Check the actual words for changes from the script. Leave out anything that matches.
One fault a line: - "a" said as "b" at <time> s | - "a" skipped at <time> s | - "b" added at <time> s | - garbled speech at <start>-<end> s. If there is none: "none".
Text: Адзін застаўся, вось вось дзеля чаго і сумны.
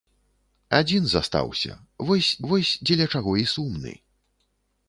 none